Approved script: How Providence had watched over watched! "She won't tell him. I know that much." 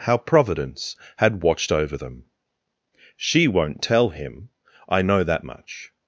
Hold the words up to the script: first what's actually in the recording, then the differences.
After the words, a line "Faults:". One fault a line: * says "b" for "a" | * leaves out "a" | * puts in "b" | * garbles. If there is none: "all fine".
How Providence had watched over them! "She won't tell him. I know that much."
Faults:
* says "them" for "watched"